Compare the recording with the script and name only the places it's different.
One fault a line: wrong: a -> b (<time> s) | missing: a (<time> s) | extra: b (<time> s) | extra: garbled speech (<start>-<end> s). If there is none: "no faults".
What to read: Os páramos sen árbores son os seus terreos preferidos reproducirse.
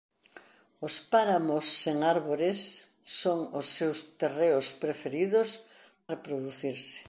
no faults